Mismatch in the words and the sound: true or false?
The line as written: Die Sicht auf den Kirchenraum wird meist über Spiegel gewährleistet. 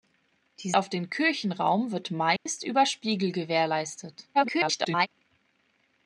true